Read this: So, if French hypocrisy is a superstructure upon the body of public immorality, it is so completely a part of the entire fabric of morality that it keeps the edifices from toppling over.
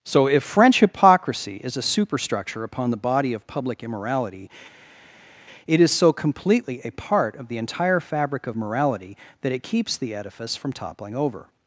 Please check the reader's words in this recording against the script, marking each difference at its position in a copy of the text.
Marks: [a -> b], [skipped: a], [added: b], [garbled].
So, if French hypocrisy is a superstructure upon the body of public immorality, it is so completely a part of the entire fabric of morality that it keeps the [edifices -> edifice] from toppling over.